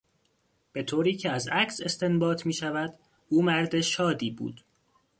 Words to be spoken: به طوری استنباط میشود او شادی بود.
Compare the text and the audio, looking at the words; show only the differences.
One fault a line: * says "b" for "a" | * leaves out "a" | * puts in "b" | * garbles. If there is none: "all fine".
* puts in "که از عکس"
* puts in "مرد"